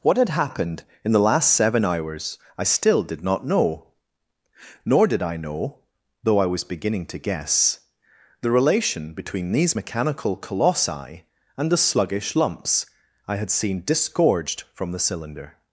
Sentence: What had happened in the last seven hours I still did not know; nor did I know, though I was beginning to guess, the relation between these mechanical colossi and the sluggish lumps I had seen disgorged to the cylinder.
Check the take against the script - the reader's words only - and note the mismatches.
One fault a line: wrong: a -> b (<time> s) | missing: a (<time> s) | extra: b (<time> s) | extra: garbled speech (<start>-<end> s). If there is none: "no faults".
wrong: to -> from (14.7 s)